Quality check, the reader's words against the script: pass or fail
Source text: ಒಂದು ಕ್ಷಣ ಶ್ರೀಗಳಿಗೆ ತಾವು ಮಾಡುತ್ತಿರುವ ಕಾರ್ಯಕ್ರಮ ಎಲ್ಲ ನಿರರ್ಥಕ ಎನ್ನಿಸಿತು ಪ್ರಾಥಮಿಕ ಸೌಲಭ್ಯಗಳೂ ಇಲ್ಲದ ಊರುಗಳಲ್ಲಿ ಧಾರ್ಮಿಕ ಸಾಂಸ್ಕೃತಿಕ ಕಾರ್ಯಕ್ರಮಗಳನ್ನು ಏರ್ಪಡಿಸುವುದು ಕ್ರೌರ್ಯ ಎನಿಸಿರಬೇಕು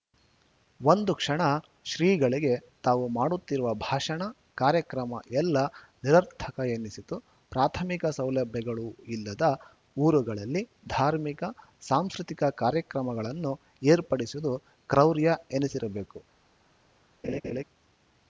fail